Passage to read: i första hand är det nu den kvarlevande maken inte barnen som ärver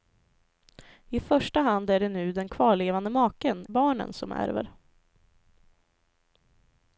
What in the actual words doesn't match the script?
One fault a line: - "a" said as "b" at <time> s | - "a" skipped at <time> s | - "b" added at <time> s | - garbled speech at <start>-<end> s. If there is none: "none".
- "inte" skipped at 3.6 s